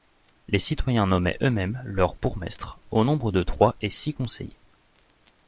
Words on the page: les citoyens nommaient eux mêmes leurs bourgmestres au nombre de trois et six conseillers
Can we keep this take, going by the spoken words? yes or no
yes